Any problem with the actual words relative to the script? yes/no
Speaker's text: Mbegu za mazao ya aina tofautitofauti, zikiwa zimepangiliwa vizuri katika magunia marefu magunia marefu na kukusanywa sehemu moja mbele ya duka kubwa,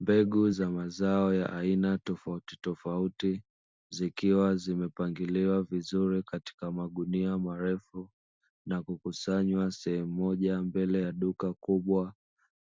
yes